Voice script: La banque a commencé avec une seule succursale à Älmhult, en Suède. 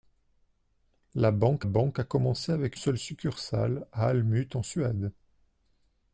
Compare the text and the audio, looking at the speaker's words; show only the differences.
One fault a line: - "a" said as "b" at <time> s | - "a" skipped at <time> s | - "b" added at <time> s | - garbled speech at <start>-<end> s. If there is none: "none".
- "banque" added at 1.6 s
- "une" skipped at 2.8 s